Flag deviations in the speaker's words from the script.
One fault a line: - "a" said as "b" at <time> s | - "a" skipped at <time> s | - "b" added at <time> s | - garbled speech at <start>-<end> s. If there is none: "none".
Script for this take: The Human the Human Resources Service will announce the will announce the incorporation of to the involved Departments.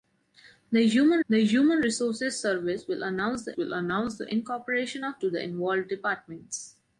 none